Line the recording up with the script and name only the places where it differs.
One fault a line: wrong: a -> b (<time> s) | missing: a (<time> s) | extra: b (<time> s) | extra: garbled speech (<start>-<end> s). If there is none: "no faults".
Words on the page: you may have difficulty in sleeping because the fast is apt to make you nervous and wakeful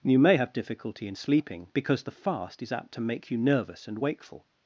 no faults